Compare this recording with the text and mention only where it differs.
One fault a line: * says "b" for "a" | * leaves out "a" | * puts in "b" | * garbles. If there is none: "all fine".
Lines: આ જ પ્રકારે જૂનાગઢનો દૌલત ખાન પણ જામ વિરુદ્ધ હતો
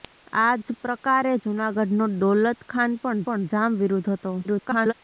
* puts in "પણ"
* garbles